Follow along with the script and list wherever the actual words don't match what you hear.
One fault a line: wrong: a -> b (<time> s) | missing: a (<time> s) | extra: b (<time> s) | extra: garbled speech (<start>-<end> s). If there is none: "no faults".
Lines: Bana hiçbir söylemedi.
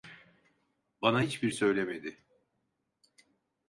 no faults